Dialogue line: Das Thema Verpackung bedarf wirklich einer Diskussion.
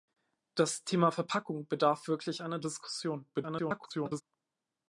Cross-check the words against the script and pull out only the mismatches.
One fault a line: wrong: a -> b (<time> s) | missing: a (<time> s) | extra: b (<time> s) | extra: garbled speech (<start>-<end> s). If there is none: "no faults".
extra: garbled speech (3.3-4.2 s)